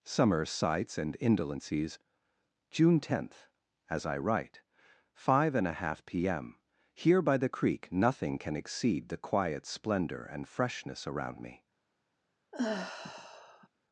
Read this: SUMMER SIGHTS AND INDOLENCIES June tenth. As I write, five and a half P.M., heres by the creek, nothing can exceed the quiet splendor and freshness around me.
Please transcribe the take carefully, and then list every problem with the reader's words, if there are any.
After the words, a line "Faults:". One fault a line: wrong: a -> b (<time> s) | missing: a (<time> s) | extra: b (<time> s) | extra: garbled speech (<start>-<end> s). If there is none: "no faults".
SUMMER SIGHTS AND INDOLENCIES June tenth. As I write, five and a half P.M., here by the creek, nothing can exceed the quiet splendor and freshness around me.
Faults:
wrong: heres -> here (6.9 s)